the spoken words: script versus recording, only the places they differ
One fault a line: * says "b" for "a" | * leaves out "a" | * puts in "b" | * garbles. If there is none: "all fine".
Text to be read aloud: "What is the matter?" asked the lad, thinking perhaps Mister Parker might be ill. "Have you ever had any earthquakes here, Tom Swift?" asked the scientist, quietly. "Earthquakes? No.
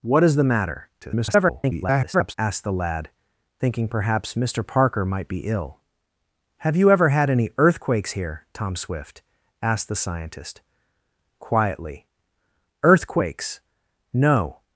* garbles